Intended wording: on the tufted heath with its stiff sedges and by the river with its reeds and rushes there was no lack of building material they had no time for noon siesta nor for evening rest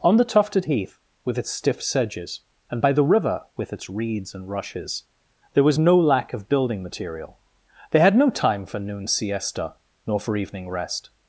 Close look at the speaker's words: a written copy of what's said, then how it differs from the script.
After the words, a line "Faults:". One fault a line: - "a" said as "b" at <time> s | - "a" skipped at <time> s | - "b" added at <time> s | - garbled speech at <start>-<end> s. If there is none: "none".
on the tufted heath with its stiff sedges and by the river with its reeds and rushes there was no lack of building material they had no time for noon siesta nor for evening rest
Faults:
none